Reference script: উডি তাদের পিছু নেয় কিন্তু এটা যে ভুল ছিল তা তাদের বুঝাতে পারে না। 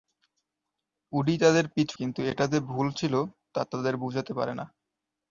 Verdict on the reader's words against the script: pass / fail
fail